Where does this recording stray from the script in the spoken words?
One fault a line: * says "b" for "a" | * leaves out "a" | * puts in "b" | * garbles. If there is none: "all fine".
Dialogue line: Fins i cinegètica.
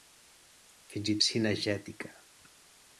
all fine